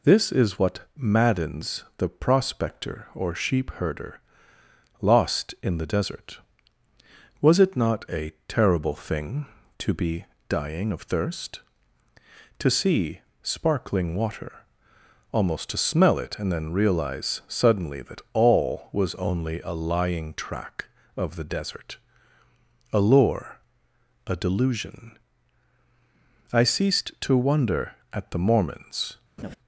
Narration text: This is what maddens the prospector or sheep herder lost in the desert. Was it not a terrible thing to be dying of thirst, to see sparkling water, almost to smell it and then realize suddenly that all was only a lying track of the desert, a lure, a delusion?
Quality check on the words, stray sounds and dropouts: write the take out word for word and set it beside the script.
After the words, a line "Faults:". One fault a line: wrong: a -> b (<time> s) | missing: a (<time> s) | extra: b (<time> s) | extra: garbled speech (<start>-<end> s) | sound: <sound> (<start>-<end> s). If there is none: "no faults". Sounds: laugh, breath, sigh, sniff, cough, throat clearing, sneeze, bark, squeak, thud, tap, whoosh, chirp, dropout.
This is what maddens the prospector or sheep herder lost in the desert. Was it not a terrible thing to be dying of thirst, to see sparkling water, almost to smell it and then realize suddenly that all was only a lying track of the desert, a lure, a delusion? I ceased to wonder at the Mormons
Faults:
extra: I ceased to wonder at the Mormons (26.5 s)
sound: laugh (29.4-29.6 s)